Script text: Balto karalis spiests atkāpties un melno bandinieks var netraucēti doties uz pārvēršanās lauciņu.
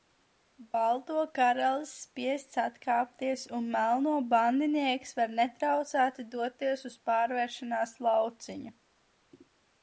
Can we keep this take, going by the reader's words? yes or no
yes